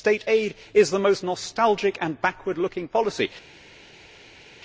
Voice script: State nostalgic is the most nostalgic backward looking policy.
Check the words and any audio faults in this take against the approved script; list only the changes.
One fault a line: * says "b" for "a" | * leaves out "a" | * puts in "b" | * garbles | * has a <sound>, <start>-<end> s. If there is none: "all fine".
* says "aid" for "nostalgic"
* puts in "and"